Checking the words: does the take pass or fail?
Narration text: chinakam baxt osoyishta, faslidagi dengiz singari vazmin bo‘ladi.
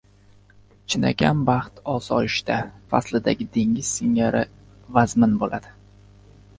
pass